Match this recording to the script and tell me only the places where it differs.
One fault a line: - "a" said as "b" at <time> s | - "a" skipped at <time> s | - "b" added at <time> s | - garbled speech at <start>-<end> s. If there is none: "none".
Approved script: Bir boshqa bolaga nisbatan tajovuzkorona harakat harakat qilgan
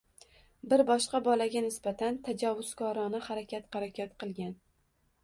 none